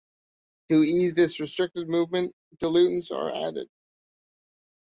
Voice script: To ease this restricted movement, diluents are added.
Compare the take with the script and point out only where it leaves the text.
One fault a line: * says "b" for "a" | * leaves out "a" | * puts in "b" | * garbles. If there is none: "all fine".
all fine